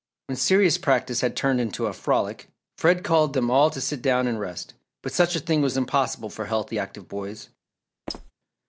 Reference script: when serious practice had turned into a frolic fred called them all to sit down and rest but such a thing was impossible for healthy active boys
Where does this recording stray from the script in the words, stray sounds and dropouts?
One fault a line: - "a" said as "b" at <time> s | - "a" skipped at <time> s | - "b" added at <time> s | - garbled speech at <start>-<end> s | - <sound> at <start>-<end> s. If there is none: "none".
- squeak at 8.1-8.3 s